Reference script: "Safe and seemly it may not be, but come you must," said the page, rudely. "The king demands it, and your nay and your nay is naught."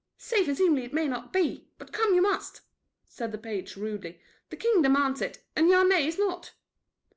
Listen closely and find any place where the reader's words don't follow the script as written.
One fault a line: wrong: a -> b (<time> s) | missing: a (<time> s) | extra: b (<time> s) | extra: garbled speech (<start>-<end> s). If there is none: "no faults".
missing: and your nay (6.1 s)